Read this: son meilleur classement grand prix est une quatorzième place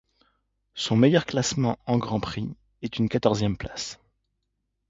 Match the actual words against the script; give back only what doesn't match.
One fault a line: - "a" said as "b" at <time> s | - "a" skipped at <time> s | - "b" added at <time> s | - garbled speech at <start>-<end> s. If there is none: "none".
- "en" added at 1.9 s